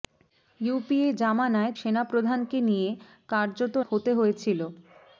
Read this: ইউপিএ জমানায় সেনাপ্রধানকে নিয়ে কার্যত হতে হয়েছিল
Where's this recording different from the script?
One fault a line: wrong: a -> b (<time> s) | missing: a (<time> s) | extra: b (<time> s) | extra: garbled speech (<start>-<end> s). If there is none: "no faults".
no faults